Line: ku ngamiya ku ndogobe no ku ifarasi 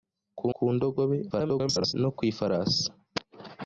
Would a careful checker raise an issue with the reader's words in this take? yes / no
yes